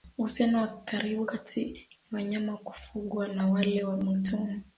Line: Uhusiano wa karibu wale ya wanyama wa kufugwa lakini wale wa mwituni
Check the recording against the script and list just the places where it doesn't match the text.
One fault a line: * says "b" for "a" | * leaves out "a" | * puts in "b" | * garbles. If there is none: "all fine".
* says "kati" for "wale"
* says "na" for "lakini"